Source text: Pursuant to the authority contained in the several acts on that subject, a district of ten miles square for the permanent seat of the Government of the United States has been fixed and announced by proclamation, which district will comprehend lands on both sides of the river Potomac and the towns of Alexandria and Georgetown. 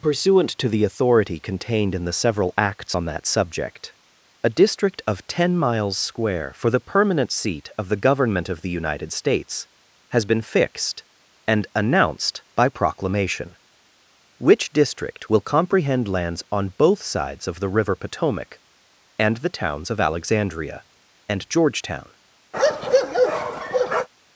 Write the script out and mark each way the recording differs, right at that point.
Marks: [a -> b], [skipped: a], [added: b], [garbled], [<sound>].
Pursuant to the authority contained in the several acts on that subject, a district of ten miles square for the permanent seat of the Government of the United States has been fixed and announced by proclamation, which district will comprehend lands on both sides of the river Potomac and the towns of Alexandria and Georgetown. [bark]